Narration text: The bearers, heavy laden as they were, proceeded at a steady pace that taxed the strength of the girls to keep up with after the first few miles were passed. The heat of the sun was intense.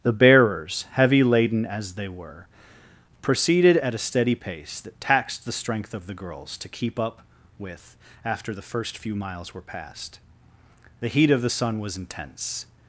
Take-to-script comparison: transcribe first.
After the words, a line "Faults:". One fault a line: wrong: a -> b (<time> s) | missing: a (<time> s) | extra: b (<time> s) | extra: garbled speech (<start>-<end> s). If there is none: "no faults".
The bearers, heavy laden as they were, proceeded at a steady pace that taxed the strength of the girls to keep up with after the first few miles were passed. The heat of the sun was intense.
Faults:
no faults